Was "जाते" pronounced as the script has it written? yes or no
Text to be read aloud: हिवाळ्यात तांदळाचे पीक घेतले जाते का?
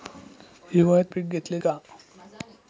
no